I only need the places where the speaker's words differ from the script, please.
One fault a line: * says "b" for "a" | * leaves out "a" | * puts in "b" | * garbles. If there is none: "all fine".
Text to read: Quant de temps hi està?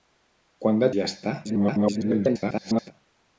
* leaves out "temps"
* garbles